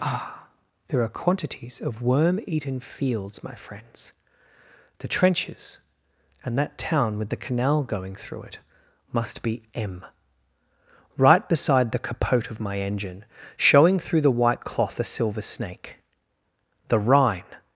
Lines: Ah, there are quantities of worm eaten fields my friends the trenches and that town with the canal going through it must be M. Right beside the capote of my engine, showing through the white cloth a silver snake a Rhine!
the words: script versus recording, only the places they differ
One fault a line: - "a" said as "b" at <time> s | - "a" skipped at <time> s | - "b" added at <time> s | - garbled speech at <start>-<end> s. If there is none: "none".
- "a" said as "the" at 16.9 s